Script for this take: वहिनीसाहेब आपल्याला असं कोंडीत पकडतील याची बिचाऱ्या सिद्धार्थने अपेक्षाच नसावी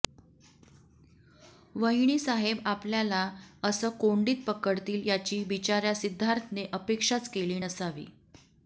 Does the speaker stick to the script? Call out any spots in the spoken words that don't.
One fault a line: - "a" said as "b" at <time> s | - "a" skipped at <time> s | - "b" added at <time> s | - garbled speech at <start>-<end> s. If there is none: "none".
- "केली" added at 7.3 s